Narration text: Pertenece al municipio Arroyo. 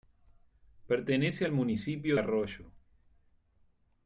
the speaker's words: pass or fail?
pass